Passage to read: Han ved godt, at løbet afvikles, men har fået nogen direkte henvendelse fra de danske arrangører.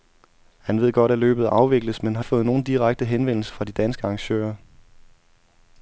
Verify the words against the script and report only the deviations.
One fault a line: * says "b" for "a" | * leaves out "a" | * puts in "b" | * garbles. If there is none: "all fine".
all fine